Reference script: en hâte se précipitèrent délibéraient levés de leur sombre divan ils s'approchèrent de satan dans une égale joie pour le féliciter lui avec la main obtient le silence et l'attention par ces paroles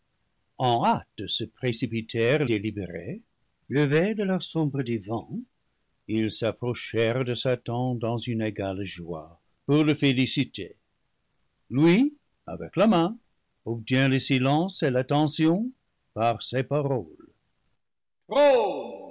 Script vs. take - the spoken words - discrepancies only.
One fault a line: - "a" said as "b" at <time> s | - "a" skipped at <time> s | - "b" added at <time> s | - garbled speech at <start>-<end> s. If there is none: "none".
none